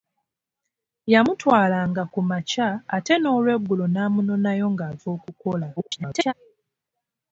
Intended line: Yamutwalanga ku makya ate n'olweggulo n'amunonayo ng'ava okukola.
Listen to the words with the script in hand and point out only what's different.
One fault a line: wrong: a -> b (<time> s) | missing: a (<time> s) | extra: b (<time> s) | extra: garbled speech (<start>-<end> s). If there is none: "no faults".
extra: garbled speech (5.8-6.3 s)